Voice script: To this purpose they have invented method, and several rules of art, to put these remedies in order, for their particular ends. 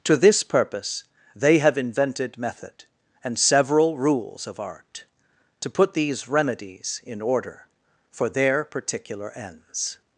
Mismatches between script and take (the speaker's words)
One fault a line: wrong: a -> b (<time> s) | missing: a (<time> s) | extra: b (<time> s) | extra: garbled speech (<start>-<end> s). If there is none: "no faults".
no faults